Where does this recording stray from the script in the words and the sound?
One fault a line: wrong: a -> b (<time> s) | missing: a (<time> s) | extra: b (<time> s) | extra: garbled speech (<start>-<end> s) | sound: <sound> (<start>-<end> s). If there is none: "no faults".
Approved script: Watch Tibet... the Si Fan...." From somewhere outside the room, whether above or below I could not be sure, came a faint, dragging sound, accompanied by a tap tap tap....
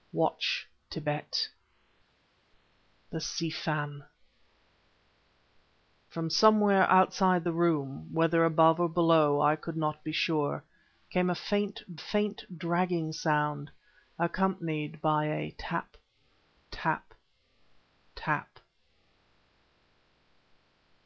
extra: faint (12.0 s)